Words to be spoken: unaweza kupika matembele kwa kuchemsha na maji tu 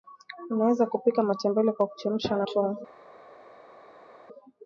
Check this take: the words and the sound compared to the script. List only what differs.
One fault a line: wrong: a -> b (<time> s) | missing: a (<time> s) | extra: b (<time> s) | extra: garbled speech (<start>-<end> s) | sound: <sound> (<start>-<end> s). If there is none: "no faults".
missing: maji (2.5 s)